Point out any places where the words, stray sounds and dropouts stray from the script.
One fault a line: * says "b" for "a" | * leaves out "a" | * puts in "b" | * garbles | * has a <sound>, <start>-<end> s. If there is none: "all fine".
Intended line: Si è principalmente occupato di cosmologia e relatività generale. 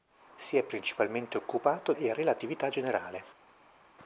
* leaves out "di cosmologia"